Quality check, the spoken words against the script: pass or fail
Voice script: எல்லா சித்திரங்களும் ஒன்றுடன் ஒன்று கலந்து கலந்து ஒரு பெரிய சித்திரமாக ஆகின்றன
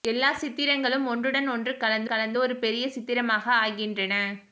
pass